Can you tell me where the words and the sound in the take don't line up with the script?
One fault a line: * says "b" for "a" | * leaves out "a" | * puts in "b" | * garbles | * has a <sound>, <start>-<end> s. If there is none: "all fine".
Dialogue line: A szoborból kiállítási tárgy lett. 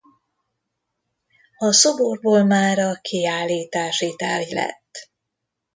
* puts in "mára"